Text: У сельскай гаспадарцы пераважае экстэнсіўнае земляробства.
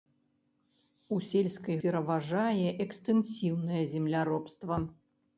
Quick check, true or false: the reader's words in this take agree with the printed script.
false